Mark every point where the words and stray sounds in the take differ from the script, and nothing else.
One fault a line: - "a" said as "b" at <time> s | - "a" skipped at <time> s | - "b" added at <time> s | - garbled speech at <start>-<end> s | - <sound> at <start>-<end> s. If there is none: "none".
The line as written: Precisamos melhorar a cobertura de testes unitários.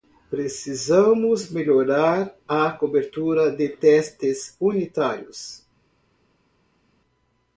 none